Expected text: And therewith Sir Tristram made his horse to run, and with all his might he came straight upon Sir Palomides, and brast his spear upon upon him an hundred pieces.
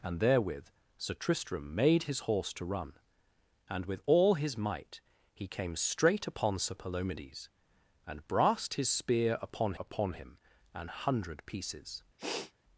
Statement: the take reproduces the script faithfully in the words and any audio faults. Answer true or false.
false